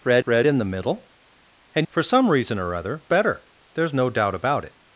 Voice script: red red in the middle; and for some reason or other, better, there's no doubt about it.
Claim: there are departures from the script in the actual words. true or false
false